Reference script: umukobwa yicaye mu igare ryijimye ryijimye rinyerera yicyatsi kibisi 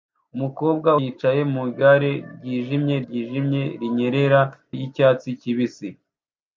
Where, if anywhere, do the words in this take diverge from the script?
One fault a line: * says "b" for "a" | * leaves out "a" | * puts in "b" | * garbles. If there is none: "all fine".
all fine